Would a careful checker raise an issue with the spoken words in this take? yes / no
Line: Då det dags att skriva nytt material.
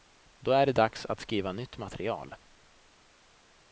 yes